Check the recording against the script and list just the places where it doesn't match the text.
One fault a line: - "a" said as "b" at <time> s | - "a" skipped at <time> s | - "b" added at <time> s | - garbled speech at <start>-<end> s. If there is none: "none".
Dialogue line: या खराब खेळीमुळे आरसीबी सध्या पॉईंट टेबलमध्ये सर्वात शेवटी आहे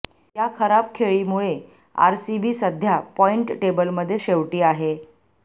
- "सर्वात" skipped at 4.2 s